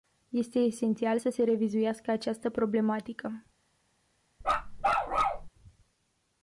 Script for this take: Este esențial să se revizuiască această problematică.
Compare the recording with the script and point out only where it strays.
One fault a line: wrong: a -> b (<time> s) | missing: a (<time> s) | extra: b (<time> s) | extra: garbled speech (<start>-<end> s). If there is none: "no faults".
no faults